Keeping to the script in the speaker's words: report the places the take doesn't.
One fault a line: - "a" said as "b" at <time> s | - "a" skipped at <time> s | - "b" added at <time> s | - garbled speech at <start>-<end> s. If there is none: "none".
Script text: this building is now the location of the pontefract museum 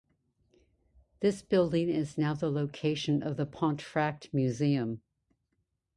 none